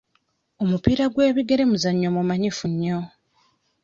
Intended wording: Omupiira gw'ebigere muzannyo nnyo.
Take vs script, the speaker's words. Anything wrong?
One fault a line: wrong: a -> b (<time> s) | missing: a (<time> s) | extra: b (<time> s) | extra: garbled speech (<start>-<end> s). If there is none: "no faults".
extra: mumanyifu (2.1 s)